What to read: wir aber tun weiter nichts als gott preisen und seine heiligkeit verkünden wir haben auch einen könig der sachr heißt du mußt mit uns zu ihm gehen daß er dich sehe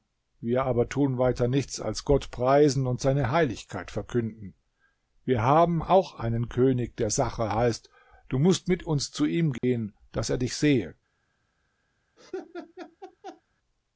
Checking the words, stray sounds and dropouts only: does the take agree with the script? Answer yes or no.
no